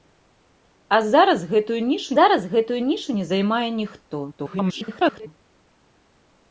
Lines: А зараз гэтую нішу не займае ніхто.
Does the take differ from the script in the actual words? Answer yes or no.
yes